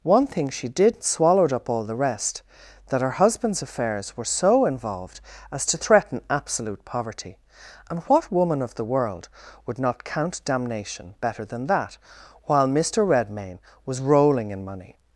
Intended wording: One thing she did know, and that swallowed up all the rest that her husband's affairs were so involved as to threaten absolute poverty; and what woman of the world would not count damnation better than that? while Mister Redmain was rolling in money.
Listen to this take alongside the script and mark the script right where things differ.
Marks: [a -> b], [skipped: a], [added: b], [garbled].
One thing she did [skipped: know, and that] swallowed up all the rest that her husband's affairs were so involved as to threaten absolute poverty; and what woman of the world would not count damnation better than that? while Mister Redmain was rolling in money.